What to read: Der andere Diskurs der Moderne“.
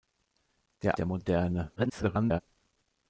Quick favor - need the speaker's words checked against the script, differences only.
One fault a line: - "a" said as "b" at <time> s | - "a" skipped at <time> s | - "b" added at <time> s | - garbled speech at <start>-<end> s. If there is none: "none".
- "andere Diskurs" skipped at 1.0 s
- garbled speech at 1.8-2.4 s